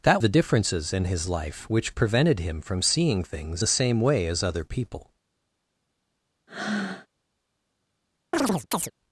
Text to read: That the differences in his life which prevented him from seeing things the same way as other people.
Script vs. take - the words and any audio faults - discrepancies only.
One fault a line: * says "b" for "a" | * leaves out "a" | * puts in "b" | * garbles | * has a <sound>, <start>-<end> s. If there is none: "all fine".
* has a breath, 6.5-7.1 s
* has a chirp, 8.3-8.9 s